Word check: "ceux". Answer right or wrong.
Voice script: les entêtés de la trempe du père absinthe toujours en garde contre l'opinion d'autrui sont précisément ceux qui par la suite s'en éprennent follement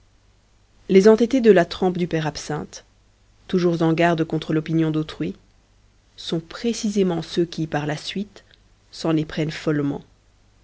right